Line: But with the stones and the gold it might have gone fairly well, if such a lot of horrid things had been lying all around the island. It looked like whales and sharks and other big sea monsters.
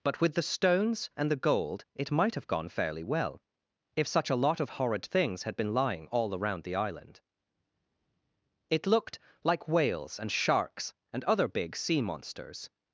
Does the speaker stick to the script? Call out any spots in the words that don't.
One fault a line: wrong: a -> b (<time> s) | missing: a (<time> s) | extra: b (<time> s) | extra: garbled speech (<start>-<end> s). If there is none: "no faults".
no faults